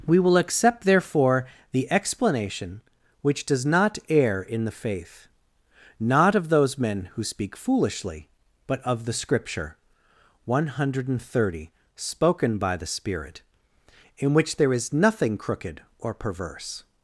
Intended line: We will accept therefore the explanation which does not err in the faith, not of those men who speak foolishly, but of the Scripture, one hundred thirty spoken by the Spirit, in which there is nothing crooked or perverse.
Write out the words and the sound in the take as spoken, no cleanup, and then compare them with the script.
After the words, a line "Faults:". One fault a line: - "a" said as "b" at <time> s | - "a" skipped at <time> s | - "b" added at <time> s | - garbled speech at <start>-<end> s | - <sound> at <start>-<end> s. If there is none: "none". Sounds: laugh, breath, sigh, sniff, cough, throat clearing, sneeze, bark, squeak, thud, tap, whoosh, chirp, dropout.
We will accept therefore the explanation which does not err in the faith, not of those men who speak foolishly, but of the Scripture, one hundred thirty spoken by the Spirit, in which there is nothing crooked or perverse.
Faults:
none